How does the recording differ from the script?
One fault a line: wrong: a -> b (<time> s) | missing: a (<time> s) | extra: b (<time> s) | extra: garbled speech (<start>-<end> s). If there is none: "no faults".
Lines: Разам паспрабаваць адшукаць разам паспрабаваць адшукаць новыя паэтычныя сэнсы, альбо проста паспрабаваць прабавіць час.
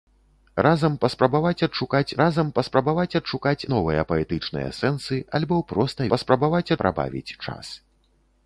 no faults